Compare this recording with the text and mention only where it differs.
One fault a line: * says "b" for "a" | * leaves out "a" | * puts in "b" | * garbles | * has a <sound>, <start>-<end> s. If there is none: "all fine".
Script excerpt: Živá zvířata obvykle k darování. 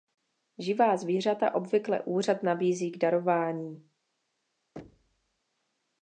* puts in "úřad nabízí"
* has a thud, 4.8-5.4 s